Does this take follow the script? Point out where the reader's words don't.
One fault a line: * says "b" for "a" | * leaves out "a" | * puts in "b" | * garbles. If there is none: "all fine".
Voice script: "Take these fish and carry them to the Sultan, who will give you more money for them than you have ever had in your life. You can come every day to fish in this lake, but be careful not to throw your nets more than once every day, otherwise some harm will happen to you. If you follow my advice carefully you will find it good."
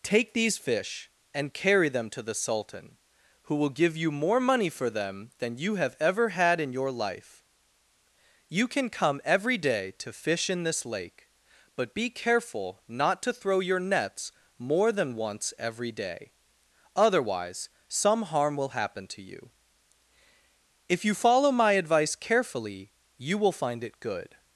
all fine